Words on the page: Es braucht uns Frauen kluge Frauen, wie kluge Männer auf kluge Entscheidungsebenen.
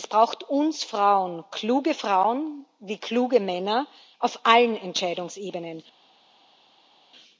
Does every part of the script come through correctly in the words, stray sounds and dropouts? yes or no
no